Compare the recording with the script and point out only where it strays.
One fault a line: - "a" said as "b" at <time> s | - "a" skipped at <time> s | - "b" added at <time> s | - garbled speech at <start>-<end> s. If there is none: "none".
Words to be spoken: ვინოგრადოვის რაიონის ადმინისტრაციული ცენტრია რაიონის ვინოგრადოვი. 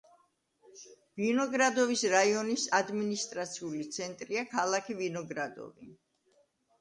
- "რაიონის" said as "ქალაქი" at 4.5 s